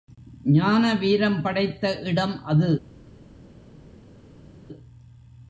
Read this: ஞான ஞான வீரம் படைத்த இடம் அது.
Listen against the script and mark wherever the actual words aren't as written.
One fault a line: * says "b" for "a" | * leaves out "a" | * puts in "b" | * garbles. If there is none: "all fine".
* leaves out "ஞான"